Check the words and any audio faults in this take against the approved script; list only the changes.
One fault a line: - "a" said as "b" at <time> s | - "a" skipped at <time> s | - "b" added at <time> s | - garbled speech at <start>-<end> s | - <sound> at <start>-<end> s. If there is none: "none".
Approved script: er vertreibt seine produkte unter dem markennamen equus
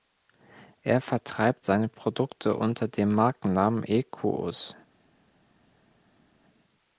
none